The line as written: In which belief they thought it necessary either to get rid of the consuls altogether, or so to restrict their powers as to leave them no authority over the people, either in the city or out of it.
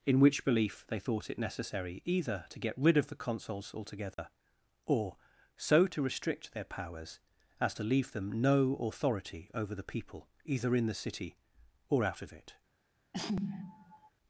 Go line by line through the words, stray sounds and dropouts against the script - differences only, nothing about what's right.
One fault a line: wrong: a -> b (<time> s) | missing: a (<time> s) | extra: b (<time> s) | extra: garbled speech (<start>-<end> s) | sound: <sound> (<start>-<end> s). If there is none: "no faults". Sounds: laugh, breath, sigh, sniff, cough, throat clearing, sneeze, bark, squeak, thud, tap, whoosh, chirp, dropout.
sound: dropout (4.1-4.2 s)
sound: sneeze (13.1-14.1 s)